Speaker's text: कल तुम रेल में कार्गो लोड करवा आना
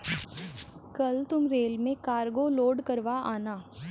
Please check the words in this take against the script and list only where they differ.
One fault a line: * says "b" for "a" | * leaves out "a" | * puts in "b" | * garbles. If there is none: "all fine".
all fine